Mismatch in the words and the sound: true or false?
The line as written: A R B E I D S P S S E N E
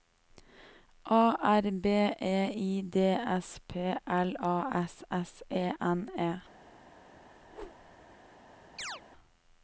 true